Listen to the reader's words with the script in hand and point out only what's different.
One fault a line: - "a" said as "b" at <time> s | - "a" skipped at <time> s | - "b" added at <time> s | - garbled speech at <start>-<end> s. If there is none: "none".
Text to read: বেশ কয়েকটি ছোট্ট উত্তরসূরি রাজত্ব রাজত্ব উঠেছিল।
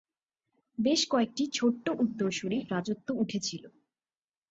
- "রাজত্ব" skipped at 3.1 s